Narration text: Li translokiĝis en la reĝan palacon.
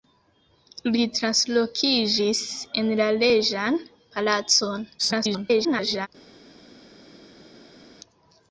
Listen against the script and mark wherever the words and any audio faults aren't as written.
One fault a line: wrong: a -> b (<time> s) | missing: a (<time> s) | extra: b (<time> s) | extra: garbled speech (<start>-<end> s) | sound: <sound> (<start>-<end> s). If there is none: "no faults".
extra: garbled speech (5.0-6.1 s)